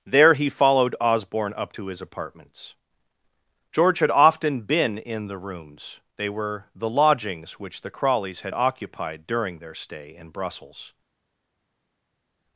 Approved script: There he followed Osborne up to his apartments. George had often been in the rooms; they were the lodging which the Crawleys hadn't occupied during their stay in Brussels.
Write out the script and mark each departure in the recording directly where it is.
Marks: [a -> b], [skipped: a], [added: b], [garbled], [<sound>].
There he followed Osborne up to his apartments. George had often been in the rooms; they were the [lodging -> lodgings] which the Crawleys [hadn't -> had] occupied during their stay in Brussels.